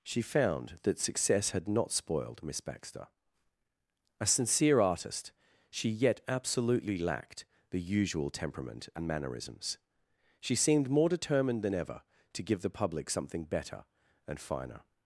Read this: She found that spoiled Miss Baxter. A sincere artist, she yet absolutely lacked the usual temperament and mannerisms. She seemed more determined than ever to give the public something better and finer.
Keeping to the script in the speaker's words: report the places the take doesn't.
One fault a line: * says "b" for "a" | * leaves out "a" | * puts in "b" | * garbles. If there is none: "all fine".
* puts in "success had not"